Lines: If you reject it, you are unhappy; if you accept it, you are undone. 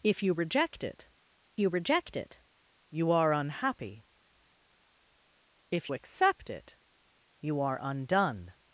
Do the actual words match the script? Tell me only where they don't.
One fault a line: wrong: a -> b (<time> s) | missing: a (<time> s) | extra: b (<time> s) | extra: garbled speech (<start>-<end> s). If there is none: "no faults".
extra: reject it you (1.7 s)
missing: you (5.9 s)